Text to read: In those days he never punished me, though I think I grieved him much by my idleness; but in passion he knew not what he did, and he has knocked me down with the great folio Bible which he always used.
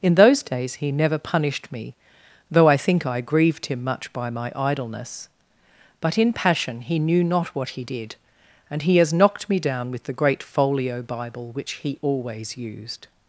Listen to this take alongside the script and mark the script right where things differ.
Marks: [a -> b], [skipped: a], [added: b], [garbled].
In those days he never punished me, though I think I grieved him much by my idleness; but in passion he knew not what he did, and he has knocked me down with the great folio Bible which he always used.